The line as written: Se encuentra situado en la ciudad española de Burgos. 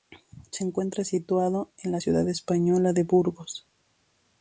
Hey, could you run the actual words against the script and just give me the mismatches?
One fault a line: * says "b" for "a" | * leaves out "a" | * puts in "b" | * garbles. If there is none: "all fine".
all fine